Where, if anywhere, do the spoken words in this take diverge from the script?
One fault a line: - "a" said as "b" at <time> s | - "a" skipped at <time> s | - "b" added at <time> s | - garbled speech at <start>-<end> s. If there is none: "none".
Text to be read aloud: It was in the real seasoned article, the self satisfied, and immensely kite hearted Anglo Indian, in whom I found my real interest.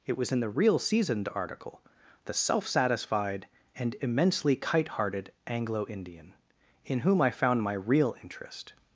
none